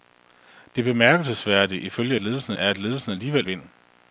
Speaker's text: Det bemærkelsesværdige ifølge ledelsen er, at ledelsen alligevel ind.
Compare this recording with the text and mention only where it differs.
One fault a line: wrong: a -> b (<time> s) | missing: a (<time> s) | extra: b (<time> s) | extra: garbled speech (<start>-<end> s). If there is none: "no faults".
no faults